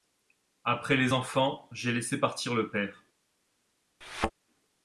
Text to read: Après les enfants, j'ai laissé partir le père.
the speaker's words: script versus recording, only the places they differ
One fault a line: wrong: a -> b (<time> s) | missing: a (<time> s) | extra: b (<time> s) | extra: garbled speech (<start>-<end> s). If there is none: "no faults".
no faults